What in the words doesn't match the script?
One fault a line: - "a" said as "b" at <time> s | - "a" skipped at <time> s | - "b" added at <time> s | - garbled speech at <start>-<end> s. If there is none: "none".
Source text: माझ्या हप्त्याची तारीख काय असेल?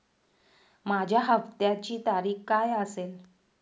none